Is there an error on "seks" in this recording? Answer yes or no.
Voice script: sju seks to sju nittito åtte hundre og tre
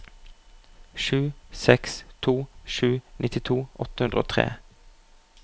no